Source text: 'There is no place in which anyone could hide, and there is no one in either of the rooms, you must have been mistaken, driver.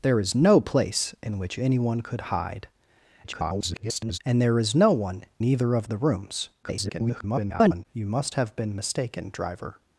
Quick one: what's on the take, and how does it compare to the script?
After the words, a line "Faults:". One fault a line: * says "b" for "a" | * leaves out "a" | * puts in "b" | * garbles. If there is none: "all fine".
'There is no place in which anyone could hide, [garbled] and there is no one either of the rooms, [garbled] you must have been mistaken, driver.
Faults:
* garbles
* leaves out "in"
* garbles